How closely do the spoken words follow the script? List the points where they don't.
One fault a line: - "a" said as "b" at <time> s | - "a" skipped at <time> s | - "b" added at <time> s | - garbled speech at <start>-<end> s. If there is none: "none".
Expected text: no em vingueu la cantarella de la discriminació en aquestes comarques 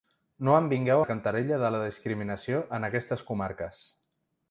none